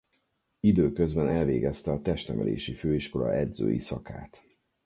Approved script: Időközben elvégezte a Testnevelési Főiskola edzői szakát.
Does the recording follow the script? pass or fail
pass